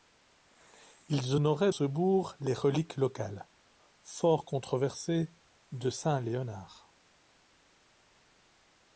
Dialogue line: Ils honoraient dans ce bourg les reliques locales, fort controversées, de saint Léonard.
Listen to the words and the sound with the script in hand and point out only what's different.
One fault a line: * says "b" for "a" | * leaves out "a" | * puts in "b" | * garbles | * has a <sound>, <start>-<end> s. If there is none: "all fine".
* leaves out "dans"